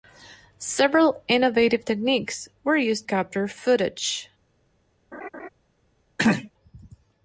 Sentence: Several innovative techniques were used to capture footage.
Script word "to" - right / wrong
wrong